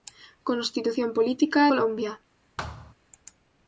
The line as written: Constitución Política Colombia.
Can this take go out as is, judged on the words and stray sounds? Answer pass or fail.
fail